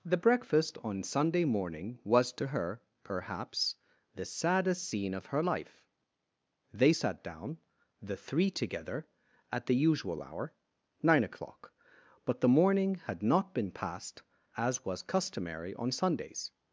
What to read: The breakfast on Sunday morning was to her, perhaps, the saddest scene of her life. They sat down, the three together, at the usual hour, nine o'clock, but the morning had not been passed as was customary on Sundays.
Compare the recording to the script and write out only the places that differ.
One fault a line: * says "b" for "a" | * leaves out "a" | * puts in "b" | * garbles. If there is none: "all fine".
all fine